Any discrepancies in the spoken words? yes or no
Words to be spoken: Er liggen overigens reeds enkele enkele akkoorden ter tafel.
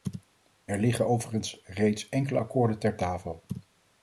yes